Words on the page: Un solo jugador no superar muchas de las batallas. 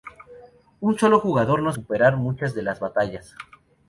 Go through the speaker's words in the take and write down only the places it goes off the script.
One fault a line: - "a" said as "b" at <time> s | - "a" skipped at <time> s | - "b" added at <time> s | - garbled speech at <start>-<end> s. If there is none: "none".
none